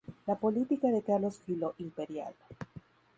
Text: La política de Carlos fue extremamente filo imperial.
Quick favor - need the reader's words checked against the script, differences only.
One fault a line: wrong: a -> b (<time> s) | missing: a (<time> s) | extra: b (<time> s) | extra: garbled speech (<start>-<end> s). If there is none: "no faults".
missing: fue extremamente (1.4 s)